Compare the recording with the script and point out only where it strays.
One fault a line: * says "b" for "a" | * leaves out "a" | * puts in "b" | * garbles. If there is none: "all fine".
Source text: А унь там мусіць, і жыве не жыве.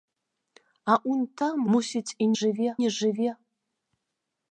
all fine